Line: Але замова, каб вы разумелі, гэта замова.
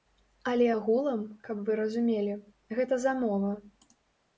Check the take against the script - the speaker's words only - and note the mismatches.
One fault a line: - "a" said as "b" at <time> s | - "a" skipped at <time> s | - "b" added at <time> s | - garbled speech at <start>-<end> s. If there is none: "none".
- "замова" said as "агулам" at 0.7 s